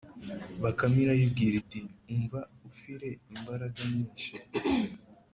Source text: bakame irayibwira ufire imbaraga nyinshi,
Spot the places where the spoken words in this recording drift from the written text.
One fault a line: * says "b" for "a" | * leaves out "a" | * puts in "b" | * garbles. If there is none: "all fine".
* puts in "iti umva"